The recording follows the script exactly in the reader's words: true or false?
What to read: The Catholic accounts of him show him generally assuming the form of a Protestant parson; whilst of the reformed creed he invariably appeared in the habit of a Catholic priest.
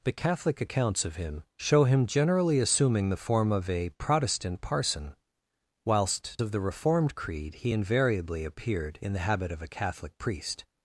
true